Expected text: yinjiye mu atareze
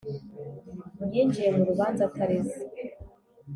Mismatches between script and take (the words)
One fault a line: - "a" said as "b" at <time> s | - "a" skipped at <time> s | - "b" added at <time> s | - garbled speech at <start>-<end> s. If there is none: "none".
- "rubanza" added at 1.7 s